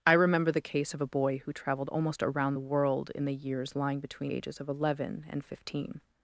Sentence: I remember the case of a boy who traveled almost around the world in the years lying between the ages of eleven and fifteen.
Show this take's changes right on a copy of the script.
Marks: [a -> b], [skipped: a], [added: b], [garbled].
I remember the case of a boy who traveled almost around the world in the years lying between [skipped: the] ages of eleven and fifteen.